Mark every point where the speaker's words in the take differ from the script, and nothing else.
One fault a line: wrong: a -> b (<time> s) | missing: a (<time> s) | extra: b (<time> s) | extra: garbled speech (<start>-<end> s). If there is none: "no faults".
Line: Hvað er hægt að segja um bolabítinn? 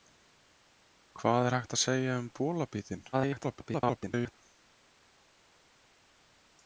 extra: garbled speech (3.1-4.3 s)